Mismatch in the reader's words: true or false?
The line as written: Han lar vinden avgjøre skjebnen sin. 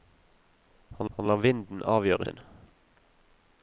true